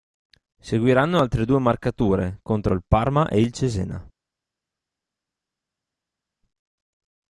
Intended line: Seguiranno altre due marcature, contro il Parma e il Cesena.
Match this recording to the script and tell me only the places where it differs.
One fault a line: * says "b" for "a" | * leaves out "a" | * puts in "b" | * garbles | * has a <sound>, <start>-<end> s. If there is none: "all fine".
all fine